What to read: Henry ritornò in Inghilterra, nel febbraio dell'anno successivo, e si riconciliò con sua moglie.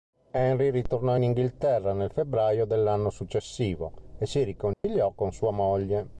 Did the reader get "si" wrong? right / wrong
right